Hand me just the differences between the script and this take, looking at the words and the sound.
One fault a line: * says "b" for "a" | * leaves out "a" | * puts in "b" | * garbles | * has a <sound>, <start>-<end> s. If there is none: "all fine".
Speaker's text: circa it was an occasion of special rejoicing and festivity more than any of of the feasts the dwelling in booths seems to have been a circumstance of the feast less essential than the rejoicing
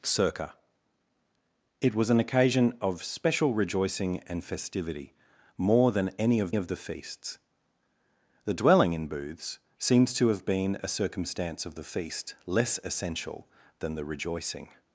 all fine